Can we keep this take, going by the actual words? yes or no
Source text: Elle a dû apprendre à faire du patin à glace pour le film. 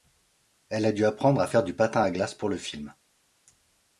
yes